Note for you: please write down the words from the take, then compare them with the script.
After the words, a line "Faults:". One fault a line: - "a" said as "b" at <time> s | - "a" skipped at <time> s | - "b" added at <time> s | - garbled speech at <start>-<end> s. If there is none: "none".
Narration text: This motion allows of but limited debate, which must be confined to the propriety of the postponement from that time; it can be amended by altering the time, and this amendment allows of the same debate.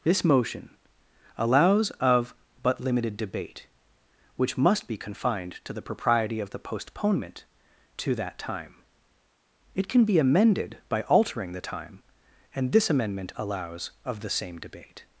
This motion allows of but limited debate, which must be confined to the propriety of the postponement to that time; it can be amended by altering the time, and this amendment allows of the same debate.
Faults:
- "from" said as "to" at 8.0 s